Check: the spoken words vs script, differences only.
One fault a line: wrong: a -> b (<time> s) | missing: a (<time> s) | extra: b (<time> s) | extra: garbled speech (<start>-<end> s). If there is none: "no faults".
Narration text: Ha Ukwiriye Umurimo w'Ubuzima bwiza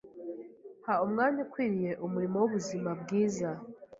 extra: Umwanya (1.1 s)